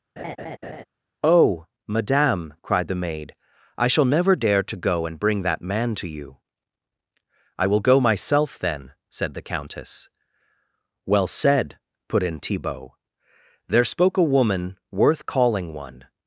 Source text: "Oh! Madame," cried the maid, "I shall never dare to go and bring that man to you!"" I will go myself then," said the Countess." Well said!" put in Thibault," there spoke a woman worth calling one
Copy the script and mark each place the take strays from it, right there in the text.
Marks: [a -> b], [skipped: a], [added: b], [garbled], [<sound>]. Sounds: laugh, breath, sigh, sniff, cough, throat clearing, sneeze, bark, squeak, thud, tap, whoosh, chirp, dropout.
[laugh] "Oh! Madame," cried the maid, "I shall never dare to go and bring that man to you!"" I will go myself then," said the Countess." Well said!" put in Thibault," there spoke a woman worth calling one